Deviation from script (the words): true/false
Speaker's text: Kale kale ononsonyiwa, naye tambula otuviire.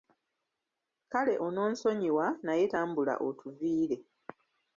true